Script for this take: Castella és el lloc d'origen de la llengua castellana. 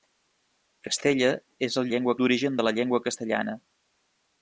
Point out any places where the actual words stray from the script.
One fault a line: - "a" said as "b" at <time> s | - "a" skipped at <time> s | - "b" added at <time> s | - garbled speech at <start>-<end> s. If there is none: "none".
- "lloc" said as "llengua" at 1.9 s